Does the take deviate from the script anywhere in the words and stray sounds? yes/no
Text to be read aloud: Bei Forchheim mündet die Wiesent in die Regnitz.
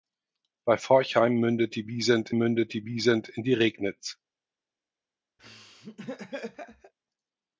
yes